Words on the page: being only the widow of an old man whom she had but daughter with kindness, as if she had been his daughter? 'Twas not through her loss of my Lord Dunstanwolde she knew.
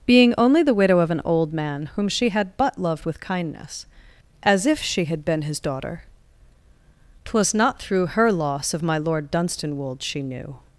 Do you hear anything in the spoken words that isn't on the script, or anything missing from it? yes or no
yes